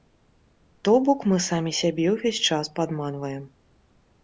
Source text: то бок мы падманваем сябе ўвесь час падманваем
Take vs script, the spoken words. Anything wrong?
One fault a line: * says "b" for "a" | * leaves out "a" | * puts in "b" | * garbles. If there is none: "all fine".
* says "самі" for "падманваем"